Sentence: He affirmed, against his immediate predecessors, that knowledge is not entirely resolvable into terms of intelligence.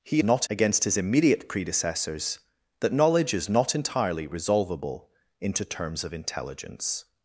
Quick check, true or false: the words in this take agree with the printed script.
false